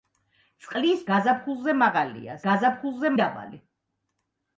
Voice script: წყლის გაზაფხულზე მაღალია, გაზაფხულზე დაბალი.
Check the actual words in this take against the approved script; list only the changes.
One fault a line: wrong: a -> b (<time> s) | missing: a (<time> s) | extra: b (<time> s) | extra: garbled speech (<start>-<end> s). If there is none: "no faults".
no faults